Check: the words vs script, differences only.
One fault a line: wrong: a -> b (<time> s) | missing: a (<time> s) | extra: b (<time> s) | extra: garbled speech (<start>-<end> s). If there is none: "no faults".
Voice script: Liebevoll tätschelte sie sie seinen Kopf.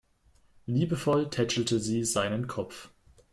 missing: sie (2.0 s)